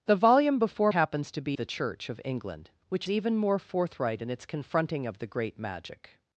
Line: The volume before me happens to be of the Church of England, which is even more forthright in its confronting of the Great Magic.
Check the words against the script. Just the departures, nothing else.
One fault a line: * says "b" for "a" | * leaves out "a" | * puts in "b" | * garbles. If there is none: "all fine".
* leaves out "me"
* leaves out "of"
* leaves out "is"